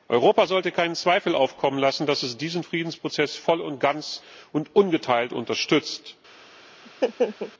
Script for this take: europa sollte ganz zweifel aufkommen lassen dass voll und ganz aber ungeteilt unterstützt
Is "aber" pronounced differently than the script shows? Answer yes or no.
yes